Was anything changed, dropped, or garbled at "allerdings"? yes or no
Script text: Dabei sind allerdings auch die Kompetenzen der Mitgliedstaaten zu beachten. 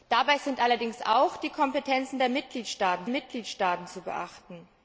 no